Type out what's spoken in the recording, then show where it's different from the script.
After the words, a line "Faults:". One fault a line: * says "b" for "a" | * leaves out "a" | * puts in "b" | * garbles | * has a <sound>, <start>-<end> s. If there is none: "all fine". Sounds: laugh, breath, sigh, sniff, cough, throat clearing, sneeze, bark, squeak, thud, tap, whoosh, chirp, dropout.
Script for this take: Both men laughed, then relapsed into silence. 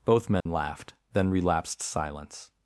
Both men laughed, then relapsed silence.
Faults:
* has a dropout, 0.4-0.5 s
* leaves out "into"